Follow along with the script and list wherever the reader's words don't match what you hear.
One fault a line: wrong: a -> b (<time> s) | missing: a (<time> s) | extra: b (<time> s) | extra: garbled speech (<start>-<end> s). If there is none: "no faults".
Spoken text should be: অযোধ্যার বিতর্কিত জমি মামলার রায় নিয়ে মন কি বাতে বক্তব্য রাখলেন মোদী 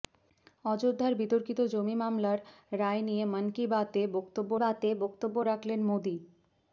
extra: বাতে বক্তব্য (4.6 s)